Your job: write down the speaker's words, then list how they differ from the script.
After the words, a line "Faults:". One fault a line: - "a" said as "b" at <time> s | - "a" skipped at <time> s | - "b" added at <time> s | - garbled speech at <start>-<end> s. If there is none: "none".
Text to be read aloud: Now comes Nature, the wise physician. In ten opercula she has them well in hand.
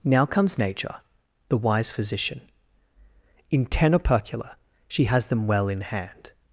Now comes Nature, the wise physician. In ten opercula she has them well in hand.
Faults:
none